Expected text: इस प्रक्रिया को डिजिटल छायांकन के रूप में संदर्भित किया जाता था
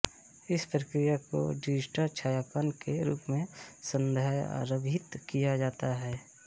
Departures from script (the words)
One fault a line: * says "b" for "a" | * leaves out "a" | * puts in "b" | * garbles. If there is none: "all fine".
* says "है" for "था"